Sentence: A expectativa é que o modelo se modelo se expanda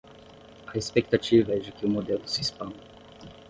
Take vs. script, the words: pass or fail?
fail